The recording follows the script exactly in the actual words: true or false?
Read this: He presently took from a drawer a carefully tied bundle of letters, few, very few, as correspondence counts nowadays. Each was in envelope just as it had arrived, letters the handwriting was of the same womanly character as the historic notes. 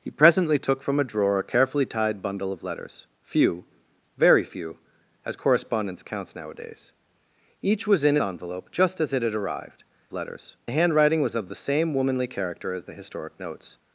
true